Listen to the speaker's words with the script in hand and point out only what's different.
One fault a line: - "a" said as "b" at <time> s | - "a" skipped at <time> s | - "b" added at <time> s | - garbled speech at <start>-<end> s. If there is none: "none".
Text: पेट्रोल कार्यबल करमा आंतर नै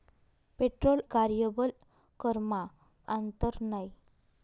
none